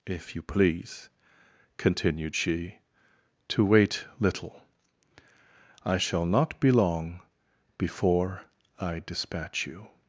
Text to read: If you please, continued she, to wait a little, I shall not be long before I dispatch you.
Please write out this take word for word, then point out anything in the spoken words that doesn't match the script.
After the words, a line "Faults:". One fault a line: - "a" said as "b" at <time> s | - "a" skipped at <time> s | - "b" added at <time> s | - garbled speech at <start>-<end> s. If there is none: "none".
If you please, continued she, to wait little, I shall not be long before I dispatch you.
Faults:
- "a" skipped at 4.1 s